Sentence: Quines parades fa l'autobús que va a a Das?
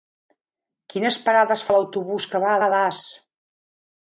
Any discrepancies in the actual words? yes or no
no